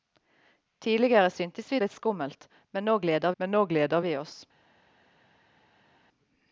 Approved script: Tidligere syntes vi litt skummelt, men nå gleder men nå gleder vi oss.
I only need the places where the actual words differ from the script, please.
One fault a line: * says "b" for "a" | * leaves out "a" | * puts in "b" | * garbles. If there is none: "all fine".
all fine